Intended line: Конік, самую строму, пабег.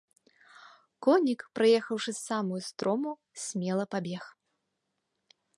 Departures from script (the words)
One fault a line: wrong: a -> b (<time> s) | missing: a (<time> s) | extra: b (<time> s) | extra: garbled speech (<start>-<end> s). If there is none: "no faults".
extra: праехаўшы (1.6 s)
extra: смела (3.5 s)